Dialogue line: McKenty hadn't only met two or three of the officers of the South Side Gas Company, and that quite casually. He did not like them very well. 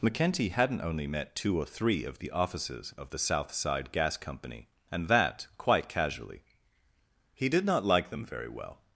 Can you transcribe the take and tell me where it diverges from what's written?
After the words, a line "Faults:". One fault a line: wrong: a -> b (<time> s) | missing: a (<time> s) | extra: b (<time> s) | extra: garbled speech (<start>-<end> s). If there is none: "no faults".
McKenty hadn't only met two or three of the officers of the South Side Gas Company, and that quite casually. He did not like them very well.
Faults:
no faults